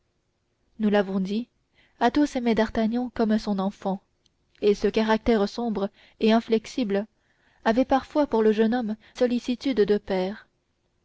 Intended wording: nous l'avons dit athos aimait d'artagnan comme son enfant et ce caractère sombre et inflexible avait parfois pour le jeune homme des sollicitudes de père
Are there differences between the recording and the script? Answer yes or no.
yes